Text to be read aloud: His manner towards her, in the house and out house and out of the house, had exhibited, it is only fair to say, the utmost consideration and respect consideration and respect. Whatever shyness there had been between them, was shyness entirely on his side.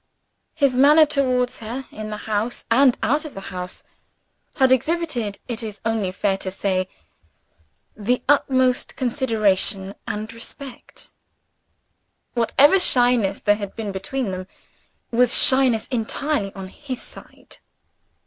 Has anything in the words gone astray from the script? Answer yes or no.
yes